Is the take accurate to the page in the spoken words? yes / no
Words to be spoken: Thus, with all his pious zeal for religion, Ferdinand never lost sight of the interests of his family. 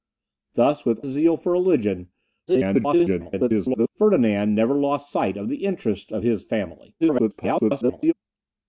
no